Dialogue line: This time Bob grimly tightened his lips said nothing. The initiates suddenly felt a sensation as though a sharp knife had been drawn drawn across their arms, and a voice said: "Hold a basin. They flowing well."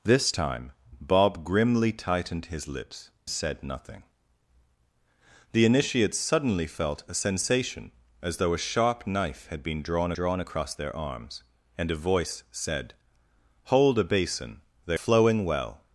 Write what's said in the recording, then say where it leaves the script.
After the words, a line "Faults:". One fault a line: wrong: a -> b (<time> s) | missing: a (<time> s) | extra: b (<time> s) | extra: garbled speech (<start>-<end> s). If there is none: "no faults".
This time Bob grimly tightened his lips said nothing. The initiates suddenly felt a sensation as though a sharp knife had been drawn drawn across their arms, and a voice said: "Hold a basin. They flowing well."
Faults:
no faults